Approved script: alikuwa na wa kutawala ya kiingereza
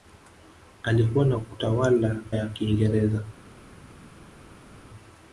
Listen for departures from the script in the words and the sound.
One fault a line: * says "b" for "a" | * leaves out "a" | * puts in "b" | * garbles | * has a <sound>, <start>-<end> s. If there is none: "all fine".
all fine